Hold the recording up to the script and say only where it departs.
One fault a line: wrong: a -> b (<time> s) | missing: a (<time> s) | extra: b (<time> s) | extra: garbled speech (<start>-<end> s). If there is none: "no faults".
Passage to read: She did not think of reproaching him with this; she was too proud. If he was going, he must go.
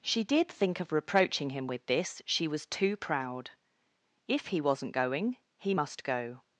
missing: not (0.5 s)
wrong: was -> wasn't (4.6 s)